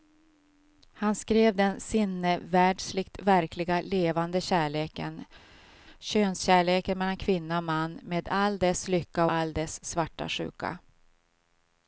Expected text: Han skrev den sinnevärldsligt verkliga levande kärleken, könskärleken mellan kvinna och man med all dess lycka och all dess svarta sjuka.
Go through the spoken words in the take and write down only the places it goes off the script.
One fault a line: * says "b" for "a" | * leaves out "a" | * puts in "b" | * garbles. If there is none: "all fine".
* leaves out "och"